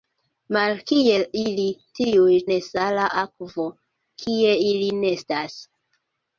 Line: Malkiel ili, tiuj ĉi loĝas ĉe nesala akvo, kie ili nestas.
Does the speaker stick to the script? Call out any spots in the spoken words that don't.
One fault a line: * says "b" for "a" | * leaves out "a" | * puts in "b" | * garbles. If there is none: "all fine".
* leaves out "ĉi loĝas ĉe"